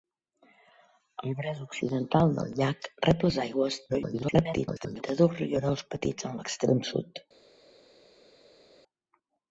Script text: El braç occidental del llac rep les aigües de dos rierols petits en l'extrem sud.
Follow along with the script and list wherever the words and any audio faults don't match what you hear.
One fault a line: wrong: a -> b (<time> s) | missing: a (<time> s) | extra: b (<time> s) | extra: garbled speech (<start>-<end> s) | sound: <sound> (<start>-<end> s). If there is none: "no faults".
extra: garbled speech (3.9-5.0 s)